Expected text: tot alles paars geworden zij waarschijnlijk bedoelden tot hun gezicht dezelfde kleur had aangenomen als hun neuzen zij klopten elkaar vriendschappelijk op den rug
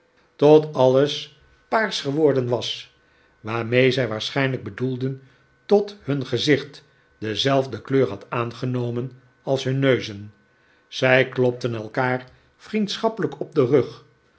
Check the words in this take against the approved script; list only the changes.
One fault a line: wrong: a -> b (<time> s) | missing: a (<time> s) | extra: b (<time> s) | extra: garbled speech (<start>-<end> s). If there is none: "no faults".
extra: was waarmee (2.5 s)